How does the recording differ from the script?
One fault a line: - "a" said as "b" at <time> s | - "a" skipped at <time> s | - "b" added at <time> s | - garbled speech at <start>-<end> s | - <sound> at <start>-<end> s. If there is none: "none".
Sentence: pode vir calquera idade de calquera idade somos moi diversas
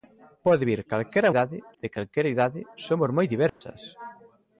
- dropout at 3.5-3.6 s